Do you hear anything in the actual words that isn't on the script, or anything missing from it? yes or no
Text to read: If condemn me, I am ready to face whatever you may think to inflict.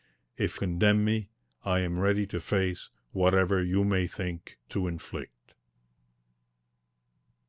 no